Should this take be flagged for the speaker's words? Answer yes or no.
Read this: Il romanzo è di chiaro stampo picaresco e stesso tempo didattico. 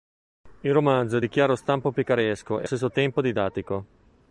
no